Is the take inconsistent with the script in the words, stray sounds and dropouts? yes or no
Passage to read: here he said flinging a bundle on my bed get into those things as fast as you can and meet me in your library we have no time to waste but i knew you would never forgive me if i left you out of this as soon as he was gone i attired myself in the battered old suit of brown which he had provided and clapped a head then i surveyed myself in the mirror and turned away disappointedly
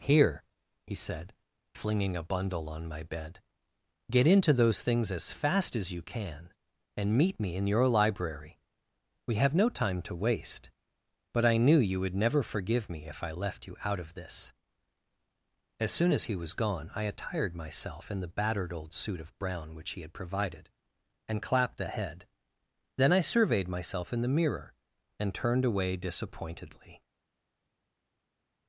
no